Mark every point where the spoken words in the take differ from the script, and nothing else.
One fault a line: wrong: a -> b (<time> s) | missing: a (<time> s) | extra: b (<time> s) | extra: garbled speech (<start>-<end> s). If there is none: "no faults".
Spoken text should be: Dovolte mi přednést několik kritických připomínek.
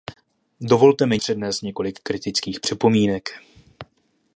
no faults